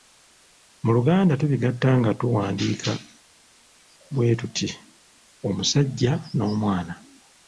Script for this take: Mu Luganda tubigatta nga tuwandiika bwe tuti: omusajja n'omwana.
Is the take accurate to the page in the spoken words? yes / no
yes